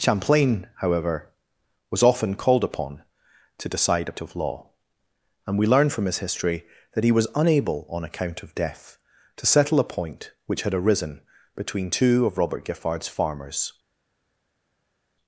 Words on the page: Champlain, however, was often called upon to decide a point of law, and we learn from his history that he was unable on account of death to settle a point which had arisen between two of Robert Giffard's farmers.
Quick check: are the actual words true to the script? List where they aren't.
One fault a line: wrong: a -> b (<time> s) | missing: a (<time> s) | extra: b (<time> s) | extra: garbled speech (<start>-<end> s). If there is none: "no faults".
missing: point (4.2 s)